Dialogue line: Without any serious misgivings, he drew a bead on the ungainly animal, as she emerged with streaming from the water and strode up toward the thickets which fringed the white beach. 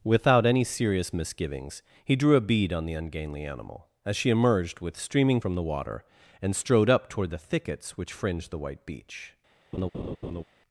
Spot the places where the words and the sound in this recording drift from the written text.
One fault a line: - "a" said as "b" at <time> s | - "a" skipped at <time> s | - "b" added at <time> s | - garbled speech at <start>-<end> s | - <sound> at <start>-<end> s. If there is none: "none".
- laugh at 9.7-10.4 s